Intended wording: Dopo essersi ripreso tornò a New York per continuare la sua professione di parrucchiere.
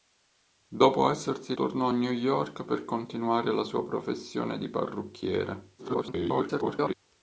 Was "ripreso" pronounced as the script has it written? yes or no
no